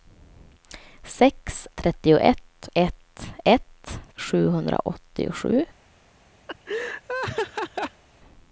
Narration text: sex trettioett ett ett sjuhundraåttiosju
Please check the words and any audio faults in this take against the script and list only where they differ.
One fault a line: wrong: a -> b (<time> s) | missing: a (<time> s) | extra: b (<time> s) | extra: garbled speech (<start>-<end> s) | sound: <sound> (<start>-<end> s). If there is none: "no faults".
sound: laugh (6.5-8.0 s)